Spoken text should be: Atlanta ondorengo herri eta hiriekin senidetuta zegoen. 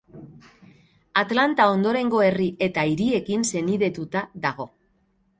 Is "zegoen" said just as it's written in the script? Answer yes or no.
no